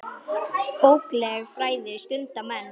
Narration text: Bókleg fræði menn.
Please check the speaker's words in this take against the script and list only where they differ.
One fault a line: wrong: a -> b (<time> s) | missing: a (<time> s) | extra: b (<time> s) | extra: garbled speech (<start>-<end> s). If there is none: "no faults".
extra: stunda (2.1 s)